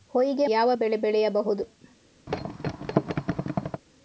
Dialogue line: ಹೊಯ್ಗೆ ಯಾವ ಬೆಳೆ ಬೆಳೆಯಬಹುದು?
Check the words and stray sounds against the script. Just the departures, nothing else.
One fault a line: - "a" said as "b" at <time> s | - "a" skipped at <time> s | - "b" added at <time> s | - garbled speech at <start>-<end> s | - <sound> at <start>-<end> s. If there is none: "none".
- thud at 2.3-3.8 s